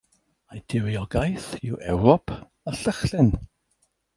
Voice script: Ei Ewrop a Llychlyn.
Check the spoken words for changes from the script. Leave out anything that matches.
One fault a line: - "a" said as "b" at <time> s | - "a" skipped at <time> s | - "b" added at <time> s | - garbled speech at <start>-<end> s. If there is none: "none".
- "diriogaeth yw" added at 0.7 s